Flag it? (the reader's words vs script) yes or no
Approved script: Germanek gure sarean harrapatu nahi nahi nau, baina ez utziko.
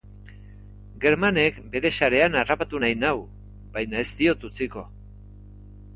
yes